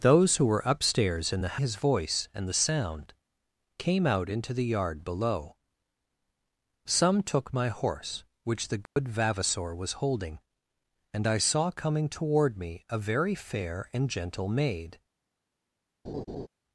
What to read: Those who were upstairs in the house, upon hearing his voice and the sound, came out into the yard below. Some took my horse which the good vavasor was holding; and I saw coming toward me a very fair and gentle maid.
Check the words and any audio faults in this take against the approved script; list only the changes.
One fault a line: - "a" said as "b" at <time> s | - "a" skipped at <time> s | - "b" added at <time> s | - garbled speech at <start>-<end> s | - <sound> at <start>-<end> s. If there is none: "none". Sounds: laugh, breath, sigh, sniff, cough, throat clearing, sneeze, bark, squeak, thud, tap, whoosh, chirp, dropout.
- "house upon hearing" skipped at 1.6 s
- dropout at 8.9-9.0 s
- laugh at 16.0-16.5 s